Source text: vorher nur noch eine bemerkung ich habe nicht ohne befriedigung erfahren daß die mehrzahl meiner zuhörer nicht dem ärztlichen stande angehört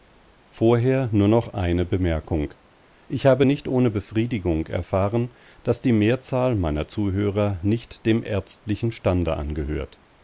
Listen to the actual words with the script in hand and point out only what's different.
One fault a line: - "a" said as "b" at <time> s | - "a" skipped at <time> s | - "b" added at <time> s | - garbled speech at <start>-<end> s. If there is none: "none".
none